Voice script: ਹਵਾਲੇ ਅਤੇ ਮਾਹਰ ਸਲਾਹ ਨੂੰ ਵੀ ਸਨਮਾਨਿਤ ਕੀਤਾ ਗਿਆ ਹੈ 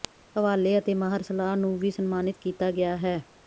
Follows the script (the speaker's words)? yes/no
yes